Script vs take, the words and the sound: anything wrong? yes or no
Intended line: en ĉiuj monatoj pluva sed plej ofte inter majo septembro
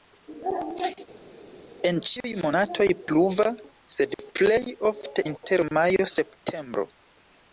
no